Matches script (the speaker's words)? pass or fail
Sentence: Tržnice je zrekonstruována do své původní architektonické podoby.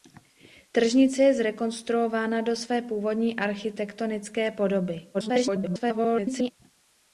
fail